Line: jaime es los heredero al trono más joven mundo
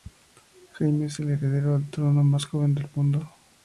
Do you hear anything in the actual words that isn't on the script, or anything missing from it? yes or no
yes